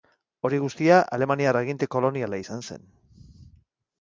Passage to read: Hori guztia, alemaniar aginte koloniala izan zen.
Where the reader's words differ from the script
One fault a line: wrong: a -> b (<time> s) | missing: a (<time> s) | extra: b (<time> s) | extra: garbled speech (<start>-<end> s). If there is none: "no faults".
no faults